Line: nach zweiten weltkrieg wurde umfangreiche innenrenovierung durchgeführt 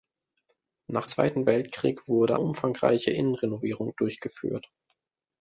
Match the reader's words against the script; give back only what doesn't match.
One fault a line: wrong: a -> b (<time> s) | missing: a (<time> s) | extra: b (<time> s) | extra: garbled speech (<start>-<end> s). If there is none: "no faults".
no faults